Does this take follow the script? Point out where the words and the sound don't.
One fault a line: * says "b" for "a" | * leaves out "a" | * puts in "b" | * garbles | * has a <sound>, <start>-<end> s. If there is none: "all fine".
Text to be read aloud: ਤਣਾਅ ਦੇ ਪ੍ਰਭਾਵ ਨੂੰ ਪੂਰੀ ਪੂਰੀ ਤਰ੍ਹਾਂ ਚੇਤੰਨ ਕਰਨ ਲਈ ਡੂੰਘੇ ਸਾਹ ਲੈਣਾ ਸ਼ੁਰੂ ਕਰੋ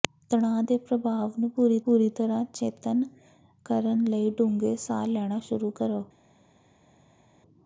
all fine